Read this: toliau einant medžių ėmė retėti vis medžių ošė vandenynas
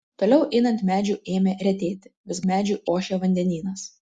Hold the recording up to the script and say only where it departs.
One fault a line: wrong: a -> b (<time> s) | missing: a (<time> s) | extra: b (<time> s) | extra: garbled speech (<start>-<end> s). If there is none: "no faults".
no faults